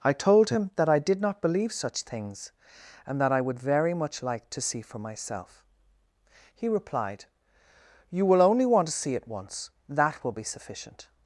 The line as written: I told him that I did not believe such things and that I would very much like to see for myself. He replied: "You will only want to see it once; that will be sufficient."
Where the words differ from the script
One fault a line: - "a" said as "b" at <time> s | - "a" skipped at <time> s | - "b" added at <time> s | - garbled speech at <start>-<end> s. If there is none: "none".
none